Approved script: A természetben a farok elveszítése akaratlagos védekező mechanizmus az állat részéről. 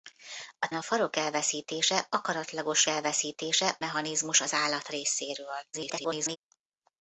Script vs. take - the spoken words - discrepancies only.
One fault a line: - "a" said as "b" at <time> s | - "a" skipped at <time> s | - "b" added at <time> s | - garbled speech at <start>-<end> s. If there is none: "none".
- "természetben" skipped at 0.7 s
- "védekező" said as "elveszítése" at 2.9 s
- garbled speech at 5.7-6.4 s